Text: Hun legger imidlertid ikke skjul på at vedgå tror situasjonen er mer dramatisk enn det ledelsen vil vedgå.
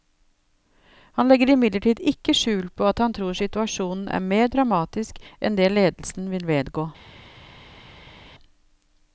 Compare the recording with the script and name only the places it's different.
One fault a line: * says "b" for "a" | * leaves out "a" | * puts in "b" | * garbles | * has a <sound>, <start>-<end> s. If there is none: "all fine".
* says "Han" for "Hun"
* says "han" for "vedgå"